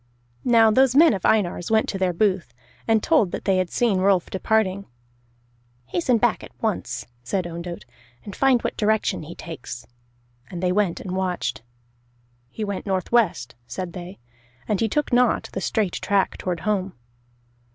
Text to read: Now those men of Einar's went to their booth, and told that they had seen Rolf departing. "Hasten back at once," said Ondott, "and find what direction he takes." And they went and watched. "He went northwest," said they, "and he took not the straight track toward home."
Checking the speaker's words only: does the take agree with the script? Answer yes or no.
yes